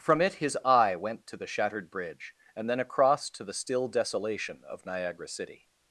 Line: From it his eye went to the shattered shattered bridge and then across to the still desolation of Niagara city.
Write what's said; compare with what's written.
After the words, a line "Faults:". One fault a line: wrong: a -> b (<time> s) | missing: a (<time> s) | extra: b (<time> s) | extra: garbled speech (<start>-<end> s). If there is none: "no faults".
From it his eye went to the shattered bridge and then across to the still desolation of Niagara city.
Faults:
missing: shattered (1.9 s)